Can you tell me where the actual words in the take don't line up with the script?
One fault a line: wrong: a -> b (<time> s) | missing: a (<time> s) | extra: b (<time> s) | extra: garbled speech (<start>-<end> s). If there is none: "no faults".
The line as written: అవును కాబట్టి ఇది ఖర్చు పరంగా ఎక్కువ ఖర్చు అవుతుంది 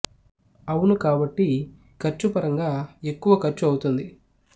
missing: ఇది (1.5 s)